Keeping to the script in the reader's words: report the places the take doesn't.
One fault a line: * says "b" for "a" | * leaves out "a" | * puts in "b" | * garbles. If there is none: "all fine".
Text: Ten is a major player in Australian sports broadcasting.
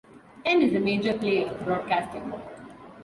* leaves out "in Australian sports"